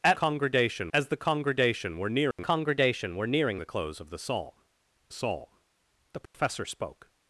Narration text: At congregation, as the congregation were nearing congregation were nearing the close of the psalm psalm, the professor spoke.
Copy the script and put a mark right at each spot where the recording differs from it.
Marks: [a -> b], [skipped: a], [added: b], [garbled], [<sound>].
At congregation, as the congregation were nearing [dropout] congregation were nearing the close of the psalm psalm, the professor [dropout] spoke.